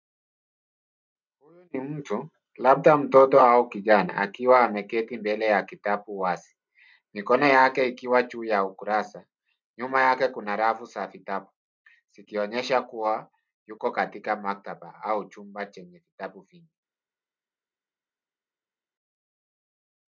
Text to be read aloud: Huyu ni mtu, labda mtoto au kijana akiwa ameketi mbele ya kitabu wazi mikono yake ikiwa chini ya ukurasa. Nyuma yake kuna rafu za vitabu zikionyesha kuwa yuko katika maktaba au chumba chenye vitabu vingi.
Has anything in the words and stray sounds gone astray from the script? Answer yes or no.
yes